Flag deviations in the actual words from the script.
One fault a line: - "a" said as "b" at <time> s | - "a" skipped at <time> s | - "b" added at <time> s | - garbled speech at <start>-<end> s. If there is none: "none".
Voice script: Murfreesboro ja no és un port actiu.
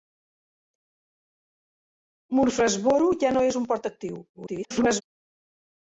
- garbled speech at 4.3-5.0 s